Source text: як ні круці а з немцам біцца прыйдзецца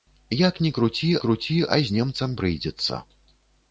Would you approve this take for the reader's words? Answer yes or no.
no